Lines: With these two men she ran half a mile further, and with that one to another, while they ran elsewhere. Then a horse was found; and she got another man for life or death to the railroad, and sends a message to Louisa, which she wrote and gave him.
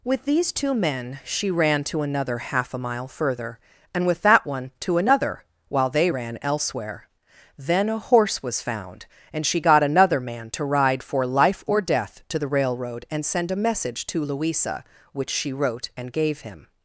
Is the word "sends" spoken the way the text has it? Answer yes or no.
no